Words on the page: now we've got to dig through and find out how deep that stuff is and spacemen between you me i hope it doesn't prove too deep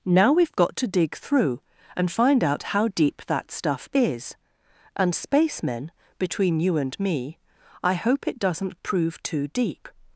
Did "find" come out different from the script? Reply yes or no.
no